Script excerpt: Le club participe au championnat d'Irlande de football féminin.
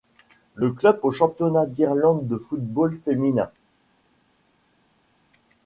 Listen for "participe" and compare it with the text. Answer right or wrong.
wrong